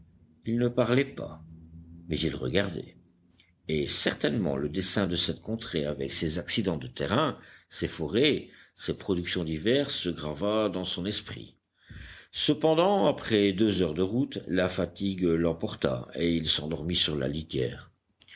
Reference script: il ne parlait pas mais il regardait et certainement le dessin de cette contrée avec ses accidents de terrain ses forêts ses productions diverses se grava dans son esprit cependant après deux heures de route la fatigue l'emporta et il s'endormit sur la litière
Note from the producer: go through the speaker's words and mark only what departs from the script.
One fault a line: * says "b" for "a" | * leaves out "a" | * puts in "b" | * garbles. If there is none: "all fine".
all fine